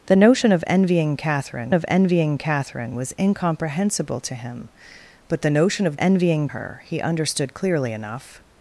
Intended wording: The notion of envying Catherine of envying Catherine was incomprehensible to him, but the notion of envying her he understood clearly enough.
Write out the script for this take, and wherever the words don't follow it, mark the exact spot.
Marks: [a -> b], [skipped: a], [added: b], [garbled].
The notion of envying Catherine of envying Catherine was incomprehensible to him, but the notion of envying her he understood clearly enough.